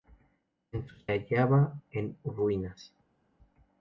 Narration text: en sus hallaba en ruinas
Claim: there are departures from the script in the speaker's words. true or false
false